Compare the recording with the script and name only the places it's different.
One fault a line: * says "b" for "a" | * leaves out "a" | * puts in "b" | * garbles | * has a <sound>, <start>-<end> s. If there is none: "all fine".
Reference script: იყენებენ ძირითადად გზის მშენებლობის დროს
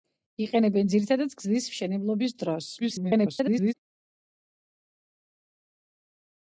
* garbles